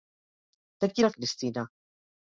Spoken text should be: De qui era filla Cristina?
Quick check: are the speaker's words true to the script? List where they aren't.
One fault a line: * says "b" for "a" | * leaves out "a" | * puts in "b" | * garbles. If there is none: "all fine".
* leaves out "filla"